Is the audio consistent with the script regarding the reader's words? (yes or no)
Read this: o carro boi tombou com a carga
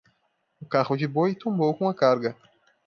no